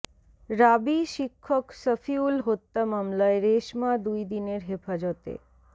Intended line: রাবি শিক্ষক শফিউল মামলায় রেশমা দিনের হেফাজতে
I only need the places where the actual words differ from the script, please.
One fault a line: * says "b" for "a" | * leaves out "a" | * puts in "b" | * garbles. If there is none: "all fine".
* puts in "হত্যা"
* puts in "দুই"